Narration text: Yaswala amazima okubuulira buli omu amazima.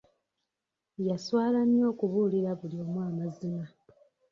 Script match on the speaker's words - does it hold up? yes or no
no